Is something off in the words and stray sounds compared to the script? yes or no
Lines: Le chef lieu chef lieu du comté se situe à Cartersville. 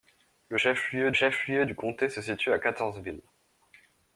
no